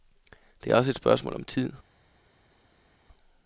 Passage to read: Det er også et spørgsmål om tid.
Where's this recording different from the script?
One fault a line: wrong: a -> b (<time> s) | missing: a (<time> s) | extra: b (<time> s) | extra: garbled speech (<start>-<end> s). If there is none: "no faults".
no faults